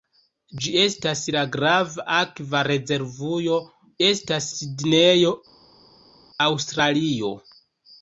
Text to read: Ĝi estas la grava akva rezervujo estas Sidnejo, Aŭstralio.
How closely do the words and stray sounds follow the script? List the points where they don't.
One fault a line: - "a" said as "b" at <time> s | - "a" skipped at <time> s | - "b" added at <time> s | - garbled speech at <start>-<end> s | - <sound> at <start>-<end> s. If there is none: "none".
none